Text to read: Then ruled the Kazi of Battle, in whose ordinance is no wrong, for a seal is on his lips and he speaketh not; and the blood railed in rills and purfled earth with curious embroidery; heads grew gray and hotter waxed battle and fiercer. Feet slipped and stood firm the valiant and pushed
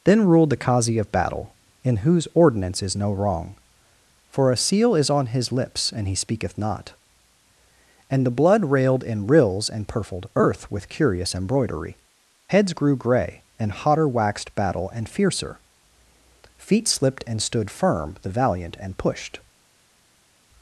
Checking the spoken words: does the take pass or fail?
pass